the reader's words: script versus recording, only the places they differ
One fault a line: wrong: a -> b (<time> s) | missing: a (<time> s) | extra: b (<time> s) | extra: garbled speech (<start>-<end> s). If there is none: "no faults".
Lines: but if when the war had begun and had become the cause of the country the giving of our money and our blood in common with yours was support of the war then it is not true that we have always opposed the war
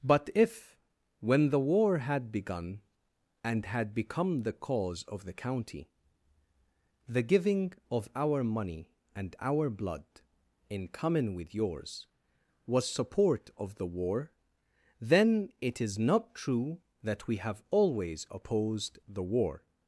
wrong: country -> county (5.3 s)